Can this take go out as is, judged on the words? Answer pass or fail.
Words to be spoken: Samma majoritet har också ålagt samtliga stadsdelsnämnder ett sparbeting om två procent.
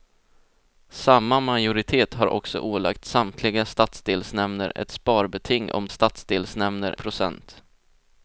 fail